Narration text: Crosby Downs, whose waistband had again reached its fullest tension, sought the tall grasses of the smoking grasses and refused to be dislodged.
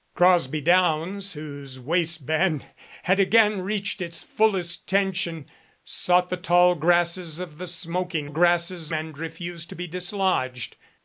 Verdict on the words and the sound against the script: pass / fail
pass